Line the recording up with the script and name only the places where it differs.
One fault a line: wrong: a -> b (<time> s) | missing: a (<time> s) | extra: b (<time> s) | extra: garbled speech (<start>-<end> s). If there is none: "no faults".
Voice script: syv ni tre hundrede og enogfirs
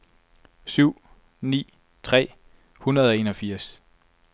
no faults